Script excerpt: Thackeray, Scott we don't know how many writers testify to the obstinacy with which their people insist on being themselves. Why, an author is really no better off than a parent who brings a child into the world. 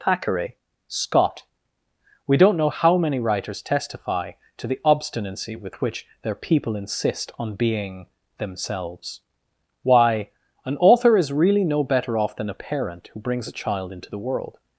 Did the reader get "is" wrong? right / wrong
right